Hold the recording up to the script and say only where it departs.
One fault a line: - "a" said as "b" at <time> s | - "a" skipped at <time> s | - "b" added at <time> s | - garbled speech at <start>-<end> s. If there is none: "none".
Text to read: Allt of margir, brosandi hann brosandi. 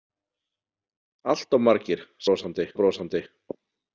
none